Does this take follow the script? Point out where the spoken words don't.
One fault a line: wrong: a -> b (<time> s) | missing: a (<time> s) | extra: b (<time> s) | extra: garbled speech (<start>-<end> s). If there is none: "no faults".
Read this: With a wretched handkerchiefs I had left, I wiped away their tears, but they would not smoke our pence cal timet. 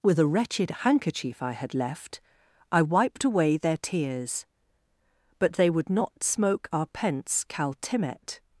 wrong: handkerchiefs -> handkerchief (0.7 s)